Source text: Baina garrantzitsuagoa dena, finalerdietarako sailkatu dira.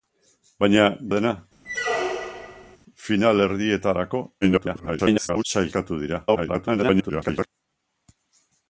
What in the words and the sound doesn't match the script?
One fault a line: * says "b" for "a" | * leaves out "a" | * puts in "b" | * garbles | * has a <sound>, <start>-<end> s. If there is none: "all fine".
* leaves out "garrantzitsuagoa"
* has a squeak, 1.6-2.8 s
* garbles
* garbles